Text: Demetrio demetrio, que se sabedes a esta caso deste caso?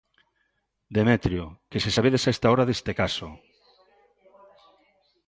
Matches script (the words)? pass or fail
fail